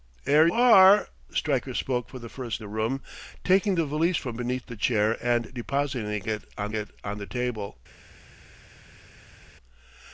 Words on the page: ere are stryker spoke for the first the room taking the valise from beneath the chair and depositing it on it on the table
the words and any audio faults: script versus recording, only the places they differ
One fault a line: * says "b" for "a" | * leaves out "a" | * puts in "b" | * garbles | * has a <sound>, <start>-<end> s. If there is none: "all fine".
all fine